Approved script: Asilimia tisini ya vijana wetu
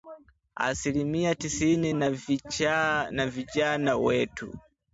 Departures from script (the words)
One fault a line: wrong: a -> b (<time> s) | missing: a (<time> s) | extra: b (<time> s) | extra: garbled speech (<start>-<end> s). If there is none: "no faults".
no faults